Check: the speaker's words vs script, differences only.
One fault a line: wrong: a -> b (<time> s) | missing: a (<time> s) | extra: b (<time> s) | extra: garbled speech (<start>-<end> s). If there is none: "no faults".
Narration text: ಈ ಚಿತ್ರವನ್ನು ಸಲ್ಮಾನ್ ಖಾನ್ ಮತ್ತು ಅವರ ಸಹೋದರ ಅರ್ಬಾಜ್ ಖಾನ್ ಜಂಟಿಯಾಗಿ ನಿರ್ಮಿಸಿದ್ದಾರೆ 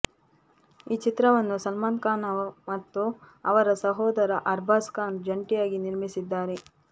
no faults